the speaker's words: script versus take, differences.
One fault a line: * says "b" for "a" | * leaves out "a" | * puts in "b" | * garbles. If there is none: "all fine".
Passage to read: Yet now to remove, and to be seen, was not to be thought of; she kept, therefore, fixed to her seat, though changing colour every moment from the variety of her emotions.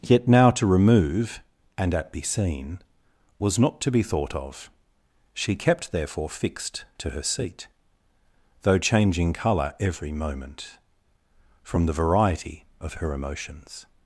* says "at" for "to"